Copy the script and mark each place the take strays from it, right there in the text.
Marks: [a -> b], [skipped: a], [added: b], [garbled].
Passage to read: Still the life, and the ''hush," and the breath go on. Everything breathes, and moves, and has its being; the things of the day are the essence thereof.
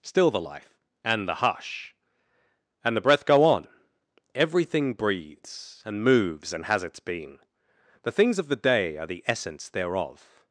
Still the life, and the ''hush," and the breath go on. Everything breathes, and moves, and has its being; the things of the day are the essence thereof.